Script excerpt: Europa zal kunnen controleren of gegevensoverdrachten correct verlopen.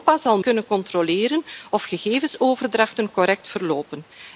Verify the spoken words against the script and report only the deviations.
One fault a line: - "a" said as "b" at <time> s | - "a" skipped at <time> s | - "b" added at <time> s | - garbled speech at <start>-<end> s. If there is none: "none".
none